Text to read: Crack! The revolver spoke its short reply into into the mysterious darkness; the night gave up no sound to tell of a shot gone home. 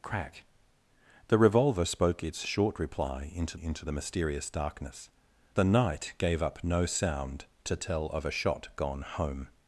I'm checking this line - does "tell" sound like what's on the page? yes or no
yes